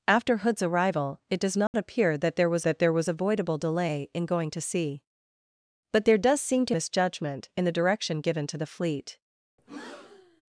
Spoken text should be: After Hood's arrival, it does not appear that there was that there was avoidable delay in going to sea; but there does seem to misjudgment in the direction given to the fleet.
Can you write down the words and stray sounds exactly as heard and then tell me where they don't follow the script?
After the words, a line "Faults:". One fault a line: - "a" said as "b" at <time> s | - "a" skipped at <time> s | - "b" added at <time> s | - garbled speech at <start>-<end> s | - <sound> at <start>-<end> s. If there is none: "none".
After Hood's arrival, it does not appear that there was that there was avoidable delay in going to sea; but there does seem to misjudgment in the direction given to the fleet.
Faults:
- dropout at 1.7-1.7 s
- breath at 9.6-10.4 s